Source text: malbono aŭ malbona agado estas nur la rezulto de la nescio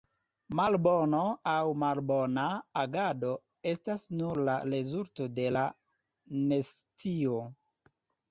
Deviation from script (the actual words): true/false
false